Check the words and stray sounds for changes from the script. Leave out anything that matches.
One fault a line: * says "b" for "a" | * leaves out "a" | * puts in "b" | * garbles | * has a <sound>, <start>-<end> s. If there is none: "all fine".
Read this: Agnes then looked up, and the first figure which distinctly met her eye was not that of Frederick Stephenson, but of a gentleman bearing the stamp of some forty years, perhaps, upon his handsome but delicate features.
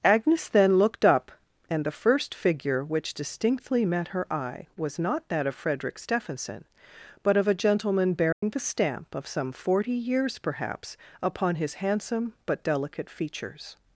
* has a dropout, 8.3-8.4 s